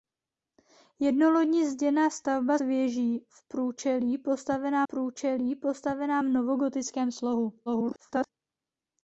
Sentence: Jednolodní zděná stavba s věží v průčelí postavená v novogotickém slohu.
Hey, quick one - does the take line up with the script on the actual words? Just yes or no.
no